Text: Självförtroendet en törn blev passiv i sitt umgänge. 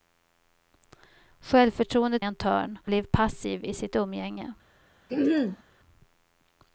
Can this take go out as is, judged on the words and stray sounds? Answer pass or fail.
fail